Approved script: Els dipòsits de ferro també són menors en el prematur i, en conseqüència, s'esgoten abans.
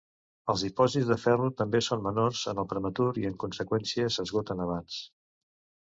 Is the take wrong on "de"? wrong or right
right